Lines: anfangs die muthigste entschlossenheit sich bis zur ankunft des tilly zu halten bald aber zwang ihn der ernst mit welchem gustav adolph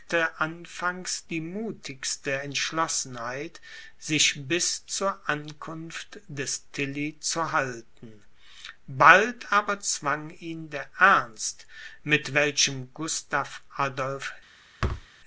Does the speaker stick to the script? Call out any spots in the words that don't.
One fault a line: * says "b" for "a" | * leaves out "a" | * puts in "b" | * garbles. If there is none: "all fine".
all fine